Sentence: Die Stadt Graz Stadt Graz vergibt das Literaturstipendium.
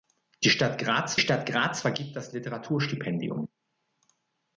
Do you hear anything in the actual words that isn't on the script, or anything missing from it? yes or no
no